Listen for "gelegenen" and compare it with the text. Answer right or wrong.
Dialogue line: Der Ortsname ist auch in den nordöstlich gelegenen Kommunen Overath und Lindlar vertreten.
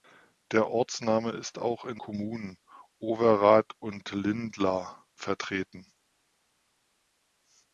wrong